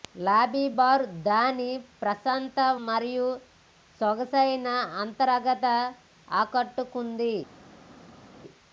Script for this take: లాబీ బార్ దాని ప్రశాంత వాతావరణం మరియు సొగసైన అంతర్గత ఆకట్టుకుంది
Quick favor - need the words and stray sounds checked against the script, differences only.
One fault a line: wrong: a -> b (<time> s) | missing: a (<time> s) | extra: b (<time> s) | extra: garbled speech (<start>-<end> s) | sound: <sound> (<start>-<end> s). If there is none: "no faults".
missing: వాతావరణం (2.6 s)